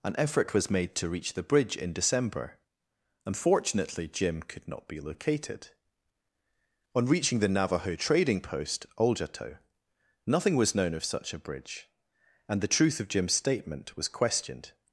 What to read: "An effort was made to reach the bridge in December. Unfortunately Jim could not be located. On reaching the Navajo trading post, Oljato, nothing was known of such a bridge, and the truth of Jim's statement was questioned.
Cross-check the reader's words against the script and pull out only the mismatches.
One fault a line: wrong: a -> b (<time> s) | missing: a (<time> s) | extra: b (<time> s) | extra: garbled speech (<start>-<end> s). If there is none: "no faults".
no faults